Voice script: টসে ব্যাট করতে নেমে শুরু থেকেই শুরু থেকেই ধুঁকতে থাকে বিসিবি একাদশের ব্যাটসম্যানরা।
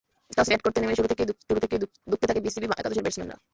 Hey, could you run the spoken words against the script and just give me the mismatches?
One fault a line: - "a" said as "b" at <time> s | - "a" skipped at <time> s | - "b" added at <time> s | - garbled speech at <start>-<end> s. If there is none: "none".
none